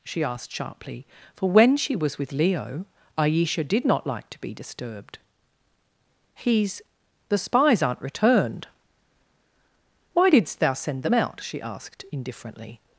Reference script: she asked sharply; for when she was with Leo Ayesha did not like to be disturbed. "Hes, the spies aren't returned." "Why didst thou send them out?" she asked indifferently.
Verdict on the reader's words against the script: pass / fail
pass